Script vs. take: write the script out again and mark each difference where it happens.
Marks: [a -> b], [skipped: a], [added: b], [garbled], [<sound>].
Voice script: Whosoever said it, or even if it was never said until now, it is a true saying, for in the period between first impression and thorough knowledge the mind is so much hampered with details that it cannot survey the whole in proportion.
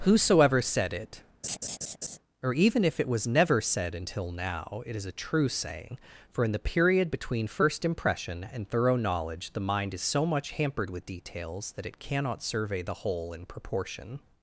Whosoever said it, [laugh] or even if it was never said until now, it is a true saying, for in the period between first impression and thorough knowledge the mind is so much hampered with details that it cannot survey the whole in proportion.